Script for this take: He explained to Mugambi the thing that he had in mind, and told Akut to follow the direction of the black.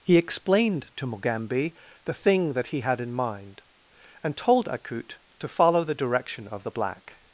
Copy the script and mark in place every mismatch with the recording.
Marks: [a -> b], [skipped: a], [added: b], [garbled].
He explained to Mugambi the thing that he had in mind, and told Akut to follow the direction of the black.